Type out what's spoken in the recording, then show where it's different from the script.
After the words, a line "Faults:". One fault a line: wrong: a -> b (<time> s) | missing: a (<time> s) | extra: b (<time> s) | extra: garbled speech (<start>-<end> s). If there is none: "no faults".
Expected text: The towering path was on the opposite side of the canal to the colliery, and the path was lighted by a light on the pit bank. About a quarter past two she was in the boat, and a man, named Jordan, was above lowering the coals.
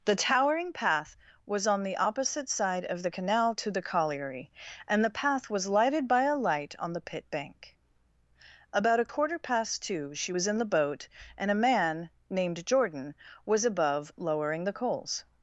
The towering path was on the opposite side of the canal to the colliery, and the path was lighted by a light on the pit bank. About a quarter past two she was in the boat, and a man, named Jordan, was above lowering the coals.
Faults:
no faults